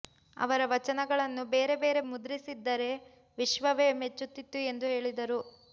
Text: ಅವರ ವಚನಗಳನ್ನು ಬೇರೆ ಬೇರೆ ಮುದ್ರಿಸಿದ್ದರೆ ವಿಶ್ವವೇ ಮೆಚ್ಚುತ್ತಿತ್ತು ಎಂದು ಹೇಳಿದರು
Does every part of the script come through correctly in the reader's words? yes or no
yes